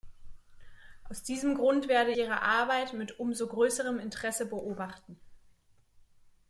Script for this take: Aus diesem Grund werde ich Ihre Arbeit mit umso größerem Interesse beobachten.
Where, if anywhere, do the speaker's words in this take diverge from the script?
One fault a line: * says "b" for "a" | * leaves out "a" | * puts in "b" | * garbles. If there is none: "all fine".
* leaves out "ich"